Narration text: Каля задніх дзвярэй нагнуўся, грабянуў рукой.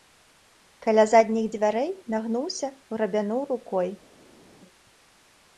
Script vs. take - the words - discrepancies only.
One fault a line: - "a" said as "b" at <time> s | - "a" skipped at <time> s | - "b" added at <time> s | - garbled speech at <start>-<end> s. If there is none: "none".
none